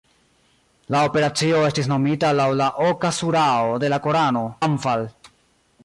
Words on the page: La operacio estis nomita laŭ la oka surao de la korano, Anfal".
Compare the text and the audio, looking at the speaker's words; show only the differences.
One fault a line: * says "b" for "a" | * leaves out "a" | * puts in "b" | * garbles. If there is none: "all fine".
all fine